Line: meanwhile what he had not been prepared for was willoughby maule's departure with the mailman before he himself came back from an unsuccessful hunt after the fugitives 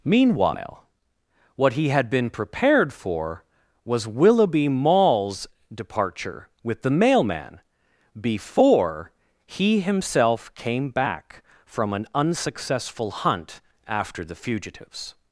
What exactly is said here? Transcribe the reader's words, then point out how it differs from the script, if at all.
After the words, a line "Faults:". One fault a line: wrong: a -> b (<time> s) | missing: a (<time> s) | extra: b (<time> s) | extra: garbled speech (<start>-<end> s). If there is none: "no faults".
meanwhile what he had been prepared for was willoughby maule's departure with the mailman before he himself came back from an unsuccessful hunt after the fugitives
Faults:
missing: not (2.1 s)